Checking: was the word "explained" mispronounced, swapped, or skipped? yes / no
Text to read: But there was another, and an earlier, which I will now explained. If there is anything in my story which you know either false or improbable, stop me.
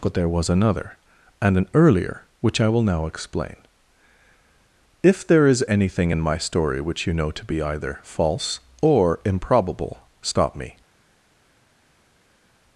yes